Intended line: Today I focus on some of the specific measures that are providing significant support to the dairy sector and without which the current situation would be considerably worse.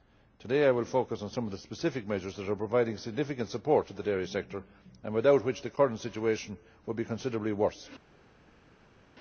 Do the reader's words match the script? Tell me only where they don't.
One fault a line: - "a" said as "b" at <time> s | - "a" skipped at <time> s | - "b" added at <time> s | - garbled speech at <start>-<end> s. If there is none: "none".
- "will" added at 0.7 s